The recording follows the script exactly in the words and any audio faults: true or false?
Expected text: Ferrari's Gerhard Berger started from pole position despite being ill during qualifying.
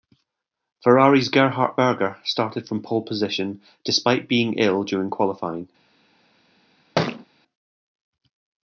false